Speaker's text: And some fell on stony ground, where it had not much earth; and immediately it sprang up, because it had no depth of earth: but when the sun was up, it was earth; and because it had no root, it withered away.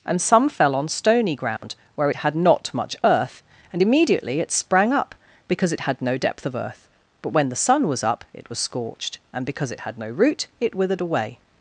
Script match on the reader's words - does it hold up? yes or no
no